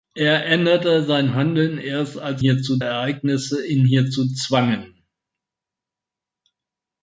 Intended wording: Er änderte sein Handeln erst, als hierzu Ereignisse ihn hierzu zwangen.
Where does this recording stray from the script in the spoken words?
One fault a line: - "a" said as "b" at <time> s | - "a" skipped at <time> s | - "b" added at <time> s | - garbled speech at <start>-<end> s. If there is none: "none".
none